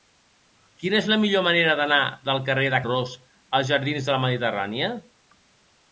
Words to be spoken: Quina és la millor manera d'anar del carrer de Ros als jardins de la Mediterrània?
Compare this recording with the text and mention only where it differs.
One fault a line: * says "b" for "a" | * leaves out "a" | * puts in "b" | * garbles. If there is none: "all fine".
all fine